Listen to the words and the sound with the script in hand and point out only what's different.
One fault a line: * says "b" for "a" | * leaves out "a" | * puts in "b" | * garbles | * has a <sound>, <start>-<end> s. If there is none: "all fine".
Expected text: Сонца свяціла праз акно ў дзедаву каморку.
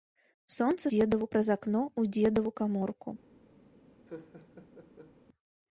* says "дзедаву" for "свяціла"
* has a laugh, 4.1-5.1 s